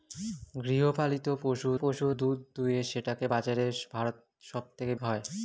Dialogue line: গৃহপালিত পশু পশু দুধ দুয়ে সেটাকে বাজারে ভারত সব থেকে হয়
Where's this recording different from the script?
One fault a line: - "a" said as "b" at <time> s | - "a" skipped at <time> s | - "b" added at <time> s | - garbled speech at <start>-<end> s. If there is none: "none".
none